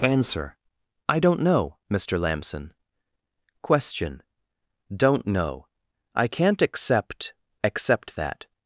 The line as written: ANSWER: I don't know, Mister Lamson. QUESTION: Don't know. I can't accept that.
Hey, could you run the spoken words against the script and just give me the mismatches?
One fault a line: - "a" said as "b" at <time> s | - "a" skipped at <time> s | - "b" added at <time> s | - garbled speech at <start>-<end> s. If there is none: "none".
- "accept" added at 7.6 s